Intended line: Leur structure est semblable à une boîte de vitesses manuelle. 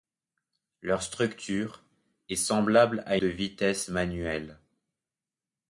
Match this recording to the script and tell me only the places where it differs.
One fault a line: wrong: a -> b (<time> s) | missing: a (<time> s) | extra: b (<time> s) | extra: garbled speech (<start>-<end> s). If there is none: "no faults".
missing: une boîte (3.2 s)